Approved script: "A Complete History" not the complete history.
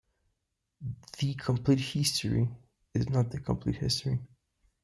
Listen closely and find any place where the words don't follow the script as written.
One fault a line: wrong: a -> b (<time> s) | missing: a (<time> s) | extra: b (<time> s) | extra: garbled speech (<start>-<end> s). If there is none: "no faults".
wrong: A -> The (1.2 s)
extra: is (3.0 s)